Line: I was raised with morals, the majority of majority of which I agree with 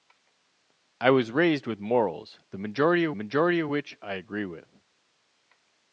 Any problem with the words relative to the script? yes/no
no